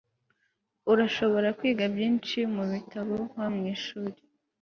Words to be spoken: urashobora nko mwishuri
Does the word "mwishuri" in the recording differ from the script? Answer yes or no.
no